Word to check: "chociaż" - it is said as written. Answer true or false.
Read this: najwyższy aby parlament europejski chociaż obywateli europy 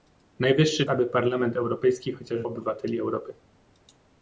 true